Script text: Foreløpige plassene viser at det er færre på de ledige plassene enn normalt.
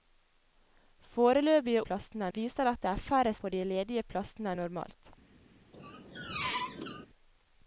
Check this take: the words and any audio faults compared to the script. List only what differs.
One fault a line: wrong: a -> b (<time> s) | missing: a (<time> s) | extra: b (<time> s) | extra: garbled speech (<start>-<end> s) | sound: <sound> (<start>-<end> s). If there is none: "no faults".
sound: squeak (5.7-7.1 s)